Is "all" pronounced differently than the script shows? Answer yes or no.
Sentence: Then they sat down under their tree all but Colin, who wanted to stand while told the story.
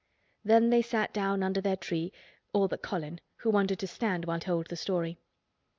no